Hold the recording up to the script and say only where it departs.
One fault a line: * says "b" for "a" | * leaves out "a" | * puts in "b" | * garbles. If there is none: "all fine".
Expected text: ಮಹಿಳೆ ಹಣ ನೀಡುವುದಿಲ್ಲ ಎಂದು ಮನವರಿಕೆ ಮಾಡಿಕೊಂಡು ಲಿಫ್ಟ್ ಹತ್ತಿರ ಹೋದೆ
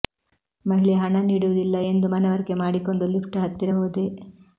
all fine